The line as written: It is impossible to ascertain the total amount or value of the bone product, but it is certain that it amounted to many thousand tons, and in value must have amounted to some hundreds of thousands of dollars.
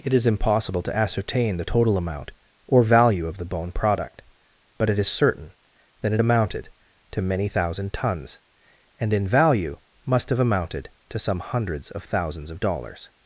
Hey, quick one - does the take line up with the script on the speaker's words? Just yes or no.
yes